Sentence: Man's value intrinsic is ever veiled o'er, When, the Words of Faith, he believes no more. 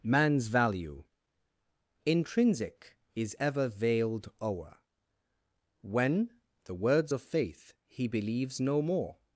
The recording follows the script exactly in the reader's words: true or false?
true